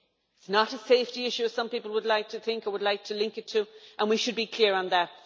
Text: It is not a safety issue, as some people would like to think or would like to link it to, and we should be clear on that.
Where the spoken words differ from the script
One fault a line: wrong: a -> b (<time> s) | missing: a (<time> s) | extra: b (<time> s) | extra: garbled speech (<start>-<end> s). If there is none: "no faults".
no faults